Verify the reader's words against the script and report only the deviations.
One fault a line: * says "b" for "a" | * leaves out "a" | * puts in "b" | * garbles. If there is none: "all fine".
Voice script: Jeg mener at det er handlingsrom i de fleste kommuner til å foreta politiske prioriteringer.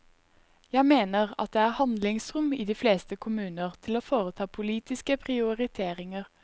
all fine